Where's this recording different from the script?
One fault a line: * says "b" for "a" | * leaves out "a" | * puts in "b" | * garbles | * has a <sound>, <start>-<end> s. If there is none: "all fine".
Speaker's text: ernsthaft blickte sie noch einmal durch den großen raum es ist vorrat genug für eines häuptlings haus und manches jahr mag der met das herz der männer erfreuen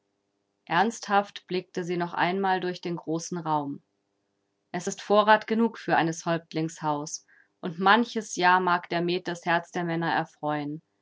all fine